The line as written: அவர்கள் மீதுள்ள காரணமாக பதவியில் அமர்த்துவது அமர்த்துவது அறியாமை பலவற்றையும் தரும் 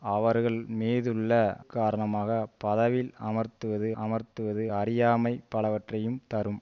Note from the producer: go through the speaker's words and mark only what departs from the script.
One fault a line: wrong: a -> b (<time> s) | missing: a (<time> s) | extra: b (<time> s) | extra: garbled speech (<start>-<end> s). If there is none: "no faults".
no faults